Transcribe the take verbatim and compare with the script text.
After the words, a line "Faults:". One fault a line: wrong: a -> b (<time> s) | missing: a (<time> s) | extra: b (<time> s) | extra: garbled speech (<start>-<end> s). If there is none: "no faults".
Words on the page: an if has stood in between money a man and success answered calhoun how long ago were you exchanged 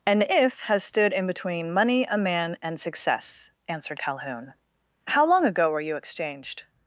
an if has stood in between money a man and success answered calhoun how long ago were you exchanged
Faults:
no faults